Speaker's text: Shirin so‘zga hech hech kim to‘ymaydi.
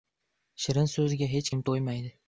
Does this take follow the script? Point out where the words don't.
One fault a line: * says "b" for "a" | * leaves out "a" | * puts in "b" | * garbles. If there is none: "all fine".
* leaves out "hech"